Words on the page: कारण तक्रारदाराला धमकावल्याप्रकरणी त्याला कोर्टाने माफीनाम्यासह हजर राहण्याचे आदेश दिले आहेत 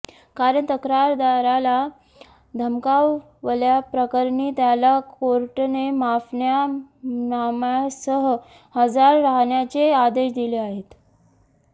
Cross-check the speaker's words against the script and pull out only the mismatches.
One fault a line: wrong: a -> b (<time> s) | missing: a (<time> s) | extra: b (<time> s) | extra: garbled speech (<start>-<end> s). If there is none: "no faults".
no faults